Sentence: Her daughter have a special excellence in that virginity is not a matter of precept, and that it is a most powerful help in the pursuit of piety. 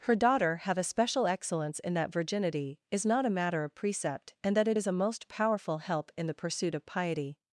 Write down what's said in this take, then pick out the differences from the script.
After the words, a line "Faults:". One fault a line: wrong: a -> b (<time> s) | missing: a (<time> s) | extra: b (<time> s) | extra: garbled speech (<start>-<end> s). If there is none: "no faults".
Her daughter have a special excellence in that virginity is not a matter of precept, and that it is a most powerful help in the pursuit of piety.
Faults:
no faults